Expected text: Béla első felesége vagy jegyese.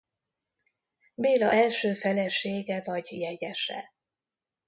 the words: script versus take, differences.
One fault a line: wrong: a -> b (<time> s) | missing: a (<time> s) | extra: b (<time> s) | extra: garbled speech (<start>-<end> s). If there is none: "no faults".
no faults